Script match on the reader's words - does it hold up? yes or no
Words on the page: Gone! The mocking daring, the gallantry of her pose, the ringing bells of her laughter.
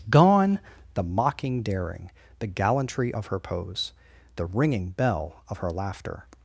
no